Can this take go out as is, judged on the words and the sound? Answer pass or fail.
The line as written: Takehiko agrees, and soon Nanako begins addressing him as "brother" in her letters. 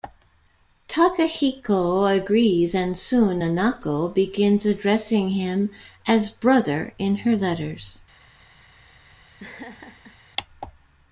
fail